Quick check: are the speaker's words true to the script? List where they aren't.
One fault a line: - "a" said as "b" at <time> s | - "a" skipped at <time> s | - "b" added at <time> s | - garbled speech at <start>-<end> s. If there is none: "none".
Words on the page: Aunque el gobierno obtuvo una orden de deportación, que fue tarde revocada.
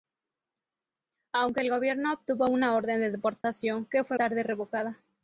none